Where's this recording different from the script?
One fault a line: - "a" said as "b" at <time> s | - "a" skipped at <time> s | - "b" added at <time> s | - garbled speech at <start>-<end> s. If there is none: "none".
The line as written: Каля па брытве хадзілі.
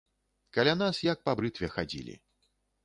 - "нас як" added at 0.8 s